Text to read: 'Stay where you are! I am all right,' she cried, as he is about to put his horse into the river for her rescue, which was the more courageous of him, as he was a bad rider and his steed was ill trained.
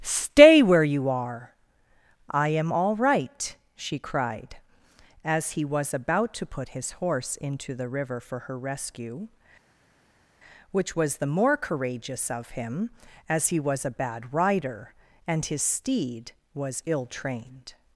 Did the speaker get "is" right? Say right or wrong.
wrong